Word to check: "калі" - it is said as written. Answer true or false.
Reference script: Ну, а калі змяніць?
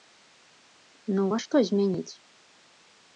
false